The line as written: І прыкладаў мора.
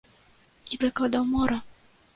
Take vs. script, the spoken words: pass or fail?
pass